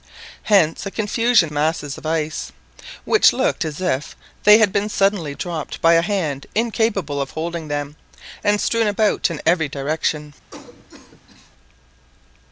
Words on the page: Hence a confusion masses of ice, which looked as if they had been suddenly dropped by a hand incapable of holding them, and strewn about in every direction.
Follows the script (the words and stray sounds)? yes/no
no